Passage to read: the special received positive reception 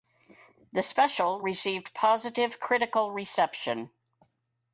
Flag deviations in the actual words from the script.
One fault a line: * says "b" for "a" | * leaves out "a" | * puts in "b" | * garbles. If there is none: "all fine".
* puts in "critical"